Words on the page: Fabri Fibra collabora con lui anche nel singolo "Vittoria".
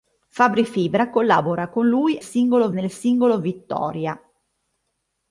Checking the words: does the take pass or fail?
fail